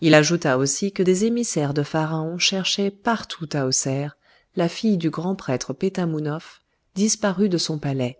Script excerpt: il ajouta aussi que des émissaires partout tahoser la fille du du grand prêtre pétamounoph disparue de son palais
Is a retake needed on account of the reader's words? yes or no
yes